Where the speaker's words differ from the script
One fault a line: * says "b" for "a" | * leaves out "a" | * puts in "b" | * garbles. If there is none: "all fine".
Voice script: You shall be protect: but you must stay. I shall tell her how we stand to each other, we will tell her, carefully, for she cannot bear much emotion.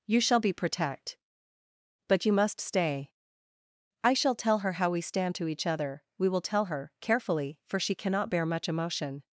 all fine